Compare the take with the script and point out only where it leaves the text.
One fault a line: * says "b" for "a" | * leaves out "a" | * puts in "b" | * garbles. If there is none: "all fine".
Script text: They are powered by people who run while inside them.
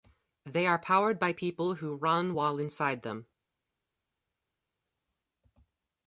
all fine